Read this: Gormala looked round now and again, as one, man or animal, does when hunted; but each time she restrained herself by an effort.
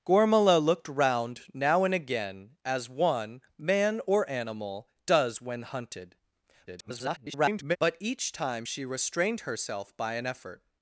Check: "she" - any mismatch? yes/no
no